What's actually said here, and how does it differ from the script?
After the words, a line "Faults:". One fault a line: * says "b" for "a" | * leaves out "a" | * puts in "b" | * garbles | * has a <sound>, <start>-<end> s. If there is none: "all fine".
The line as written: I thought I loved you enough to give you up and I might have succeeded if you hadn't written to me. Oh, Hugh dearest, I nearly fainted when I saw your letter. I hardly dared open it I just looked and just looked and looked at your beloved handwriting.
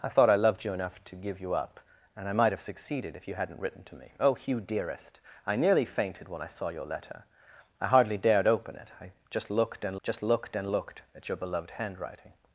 I thought I loved you enough to give you up and I might have succeeded if you hadn't written to me. Oh, Hugh dearest, I nearly fainted when I saw your letter. I hardly dared open it I just looked and just looked and looked at your beloved handwriting.
Faults:
all fine